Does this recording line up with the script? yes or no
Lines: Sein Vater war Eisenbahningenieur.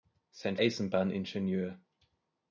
no